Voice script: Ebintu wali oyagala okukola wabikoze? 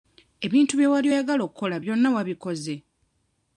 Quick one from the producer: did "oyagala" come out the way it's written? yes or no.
yes